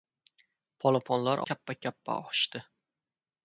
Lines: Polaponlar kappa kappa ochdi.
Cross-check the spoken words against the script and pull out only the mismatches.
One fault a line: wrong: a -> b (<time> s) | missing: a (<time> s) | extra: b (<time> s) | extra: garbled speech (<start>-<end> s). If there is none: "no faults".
no faults